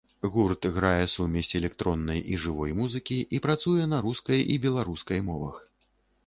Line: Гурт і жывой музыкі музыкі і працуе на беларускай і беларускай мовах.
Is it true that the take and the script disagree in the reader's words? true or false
true